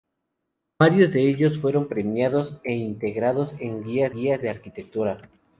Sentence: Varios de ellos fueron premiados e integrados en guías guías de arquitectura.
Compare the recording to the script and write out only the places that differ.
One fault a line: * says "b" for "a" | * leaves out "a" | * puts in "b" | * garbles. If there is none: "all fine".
all fine